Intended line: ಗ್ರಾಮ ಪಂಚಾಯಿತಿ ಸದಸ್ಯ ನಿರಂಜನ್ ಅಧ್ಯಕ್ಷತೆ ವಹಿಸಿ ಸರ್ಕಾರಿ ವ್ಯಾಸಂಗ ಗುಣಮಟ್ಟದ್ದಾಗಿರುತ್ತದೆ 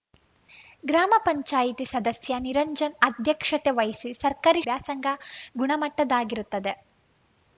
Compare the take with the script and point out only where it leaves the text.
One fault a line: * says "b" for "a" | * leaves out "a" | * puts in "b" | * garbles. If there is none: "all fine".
all fine